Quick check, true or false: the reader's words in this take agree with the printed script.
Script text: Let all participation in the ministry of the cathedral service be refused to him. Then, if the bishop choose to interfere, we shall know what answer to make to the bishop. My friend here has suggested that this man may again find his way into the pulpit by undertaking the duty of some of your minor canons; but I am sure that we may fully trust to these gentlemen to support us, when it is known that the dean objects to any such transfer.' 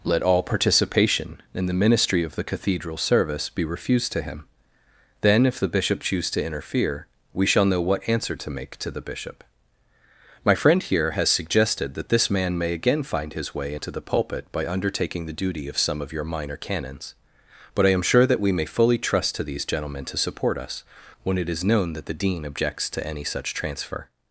true